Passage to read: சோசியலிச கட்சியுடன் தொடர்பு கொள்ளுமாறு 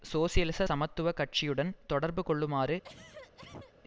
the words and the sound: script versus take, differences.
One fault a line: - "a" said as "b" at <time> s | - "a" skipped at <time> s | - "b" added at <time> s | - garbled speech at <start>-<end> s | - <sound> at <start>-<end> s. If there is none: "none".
- "சமத்துவ" added at 0.6 s
- cough at 2.8-3.8 s